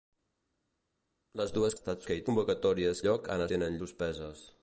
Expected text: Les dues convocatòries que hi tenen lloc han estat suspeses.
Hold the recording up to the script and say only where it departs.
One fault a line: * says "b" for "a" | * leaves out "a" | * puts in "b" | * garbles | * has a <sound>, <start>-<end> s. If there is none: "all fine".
* says "estat" for "convocatòries"
* says "convocatòries" for "tenen"
* says "tenen" for "estat"